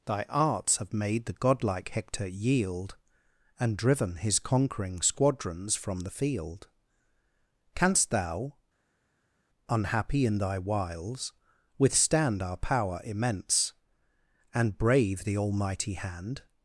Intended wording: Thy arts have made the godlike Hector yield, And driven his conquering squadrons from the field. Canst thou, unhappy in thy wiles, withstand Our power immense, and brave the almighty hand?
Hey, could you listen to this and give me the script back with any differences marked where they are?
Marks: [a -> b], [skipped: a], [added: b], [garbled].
Thy arts have made the godlike Hector yield, And driven his conquering squadrons from the field. Canst thou, unhappy in thy wiles, withstand Our power immense, and brave the almighty hand?